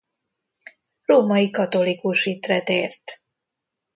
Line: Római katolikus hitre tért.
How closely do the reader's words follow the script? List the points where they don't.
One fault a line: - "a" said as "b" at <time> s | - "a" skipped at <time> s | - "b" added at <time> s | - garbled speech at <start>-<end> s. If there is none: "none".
none